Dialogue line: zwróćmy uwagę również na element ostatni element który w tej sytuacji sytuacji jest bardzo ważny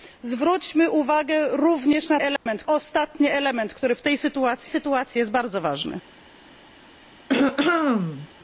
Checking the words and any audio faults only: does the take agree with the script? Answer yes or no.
no